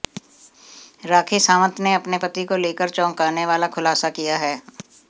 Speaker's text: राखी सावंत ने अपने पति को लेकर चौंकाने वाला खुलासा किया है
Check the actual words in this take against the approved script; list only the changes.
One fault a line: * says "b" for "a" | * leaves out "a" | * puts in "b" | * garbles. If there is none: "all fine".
all fine